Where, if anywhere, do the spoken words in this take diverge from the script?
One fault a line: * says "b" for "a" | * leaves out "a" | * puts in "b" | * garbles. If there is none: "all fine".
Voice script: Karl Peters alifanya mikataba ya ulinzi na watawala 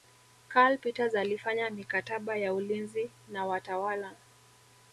all fine